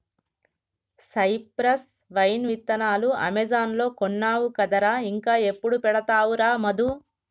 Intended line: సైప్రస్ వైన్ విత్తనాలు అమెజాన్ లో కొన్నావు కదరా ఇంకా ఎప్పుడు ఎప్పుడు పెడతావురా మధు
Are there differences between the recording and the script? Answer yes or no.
yes